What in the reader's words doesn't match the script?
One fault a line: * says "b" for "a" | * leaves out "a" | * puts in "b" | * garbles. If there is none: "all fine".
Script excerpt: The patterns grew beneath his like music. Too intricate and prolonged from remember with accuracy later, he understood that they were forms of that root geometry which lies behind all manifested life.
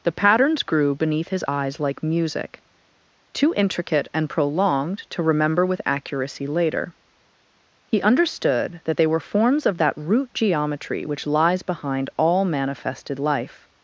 * puts in "eyes"
* says "to" for "from"